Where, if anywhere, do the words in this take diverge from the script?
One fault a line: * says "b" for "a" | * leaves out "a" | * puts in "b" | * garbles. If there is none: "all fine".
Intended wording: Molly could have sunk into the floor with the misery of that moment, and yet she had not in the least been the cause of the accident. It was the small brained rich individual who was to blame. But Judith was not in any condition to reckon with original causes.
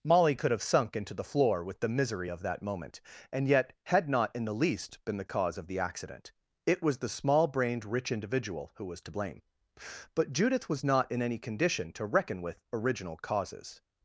* leaves out "she"